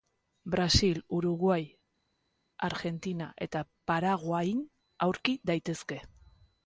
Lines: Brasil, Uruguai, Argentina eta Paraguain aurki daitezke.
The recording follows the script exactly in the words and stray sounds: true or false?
true